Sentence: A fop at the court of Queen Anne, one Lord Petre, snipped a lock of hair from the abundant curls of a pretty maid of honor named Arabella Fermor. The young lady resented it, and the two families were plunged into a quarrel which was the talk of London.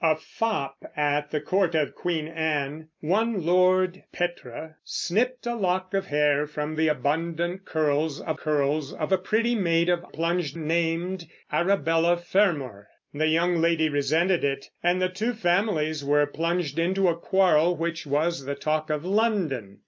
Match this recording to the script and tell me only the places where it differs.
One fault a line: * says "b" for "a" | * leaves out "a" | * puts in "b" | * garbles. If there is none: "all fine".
* puts in "curls of"
* says "plunged" for "honor"